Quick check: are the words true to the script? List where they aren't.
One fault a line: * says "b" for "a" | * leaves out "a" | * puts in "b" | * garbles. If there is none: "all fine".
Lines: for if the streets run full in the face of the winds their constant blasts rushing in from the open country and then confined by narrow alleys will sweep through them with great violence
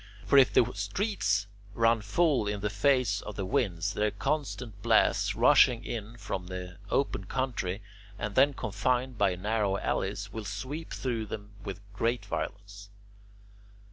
all fine